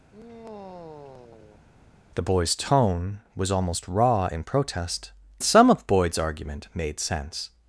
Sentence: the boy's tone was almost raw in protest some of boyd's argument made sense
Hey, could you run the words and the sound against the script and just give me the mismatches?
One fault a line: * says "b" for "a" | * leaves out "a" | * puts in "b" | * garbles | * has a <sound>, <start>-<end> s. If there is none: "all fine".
* has a sigh, 0.1-1.6 s